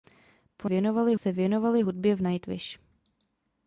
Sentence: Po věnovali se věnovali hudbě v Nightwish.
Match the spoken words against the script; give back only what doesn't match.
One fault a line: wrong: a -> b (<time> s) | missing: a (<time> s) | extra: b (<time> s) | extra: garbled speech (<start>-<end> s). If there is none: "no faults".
no faults